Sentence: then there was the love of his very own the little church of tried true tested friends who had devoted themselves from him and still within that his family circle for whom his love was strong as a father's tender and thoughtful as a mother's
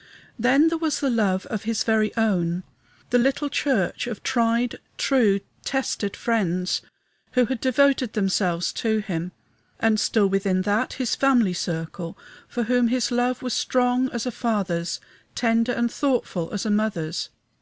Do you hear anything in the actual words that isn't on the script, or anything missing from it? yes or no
yes